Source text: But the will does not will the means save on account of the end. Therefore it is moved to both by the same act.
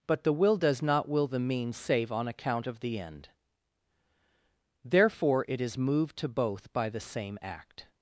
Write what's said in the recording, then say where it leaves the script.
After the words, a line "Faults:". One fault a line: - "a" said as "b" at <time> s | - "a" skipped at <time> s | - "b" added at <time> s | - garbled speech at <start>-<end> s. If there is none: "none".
But the will does not will the means save on account of the end. Therefore it is moved to both by the same act.
Faults:
none